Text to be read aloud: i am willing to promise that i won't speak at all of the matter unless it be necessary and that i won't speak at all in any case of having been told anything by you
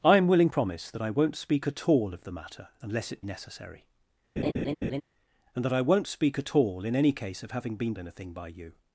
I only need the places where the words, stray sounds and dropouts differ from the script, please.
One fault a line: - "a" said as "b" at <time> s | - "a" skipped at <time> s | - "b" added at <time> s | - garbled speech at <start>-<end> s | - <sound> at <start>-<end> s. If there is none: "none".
- "to" skipped at 0.5 s
- "be" skipped at 3.2 s
- laugh at 4.4-5.0 s
- "told" skipped at 7.9 s